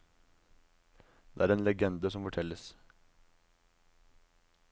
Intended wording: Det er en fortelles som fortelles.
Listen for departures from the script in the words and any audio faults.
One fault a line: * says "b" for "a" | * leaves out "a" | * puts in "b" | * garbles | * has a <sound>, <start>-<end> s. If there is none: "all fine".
* says "legende" for "fortelles"